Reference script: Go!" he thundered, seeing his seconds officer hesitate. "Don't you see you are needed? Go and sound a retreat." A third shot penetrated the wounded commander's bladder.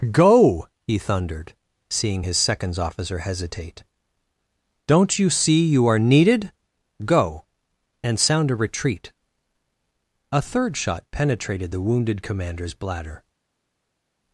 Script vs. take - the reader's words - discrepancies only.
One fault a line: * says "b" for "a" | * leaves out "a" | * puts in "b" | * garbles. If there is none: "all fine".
all fine